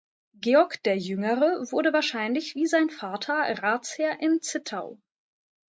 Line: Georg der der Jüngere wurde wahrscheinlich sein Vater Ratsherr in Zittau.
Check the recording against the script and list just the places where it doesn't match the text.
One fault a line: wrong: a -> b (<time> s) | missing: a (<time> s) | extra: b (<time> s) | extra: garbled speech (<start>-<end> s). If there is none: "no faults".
missing: der (1.0 s)
extra: wie (2.5 s)